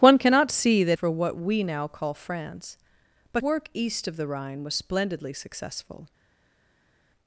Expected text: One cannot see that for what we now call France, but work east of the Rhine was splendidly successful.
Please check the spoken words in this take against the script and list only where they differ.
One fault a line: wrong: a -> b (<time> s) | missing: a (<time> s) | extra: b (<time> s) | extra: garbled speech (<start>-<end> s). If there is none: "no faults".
no faults